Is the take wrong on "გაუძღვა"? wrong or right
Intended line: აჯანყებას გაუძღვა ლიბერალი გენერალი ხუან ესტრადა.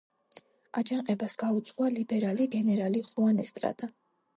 right